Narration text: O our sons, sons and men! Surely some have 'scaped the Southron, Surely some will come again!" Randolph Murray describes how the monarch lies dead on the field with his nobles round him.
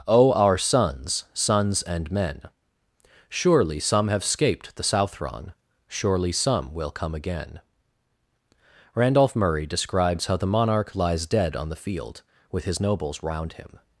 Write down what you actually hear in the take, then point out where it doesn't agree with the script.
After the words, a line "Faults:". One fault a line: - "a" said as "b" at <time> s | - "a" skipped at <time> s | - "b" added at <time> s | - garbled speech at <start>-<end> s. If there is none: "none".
O our sons, sons and men! Surely some have 'scaped the Southron, Surely some will come again!" Randolph Murray describes how the monarch lies dead on the field with his nobles round him.
Faults:
none